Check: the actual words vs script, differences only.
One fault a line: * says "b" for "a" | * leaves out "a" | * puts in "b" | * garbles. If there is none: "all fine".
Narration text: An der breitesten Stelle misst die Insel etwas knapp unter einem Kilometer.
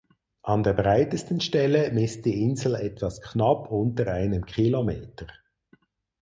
all fine